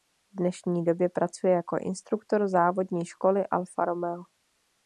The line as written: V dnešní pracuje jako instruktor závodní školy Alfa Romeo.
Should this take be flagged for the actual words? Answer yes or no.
yes